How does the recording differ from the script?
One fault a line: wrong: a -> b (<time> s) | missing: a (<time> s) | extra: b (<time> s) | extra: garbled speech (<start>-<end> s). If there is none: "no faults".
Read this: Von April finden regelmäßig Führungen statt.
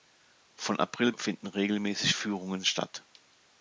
no faults